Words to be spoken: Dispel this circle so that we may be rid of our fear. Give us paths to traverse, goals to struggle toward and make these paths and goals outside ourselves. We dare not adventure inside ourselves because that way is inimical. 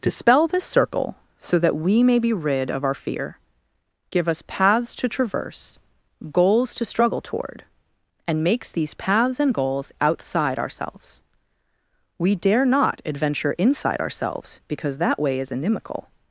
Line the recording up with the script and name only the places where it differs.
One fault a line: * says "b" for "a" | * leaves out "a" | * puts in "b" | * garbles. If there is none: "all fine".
* says "makes" for "make"